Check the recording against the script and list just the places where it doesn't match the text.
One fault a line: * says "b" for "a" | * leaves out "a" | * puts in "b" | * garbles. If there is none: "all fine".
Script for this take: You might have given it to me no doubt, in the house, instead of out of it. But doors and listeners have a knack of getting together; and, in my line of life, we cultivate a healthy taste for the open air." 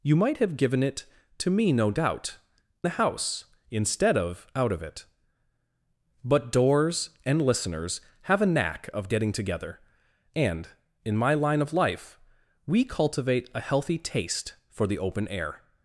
* leaves out "in"